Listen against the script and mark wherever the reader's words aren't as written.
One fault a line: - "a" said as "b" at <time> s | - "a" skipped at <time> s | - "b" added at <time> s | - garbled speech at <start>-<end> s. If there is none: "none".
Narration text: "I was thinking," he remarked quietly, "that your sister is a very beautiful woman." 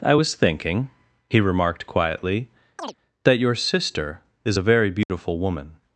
none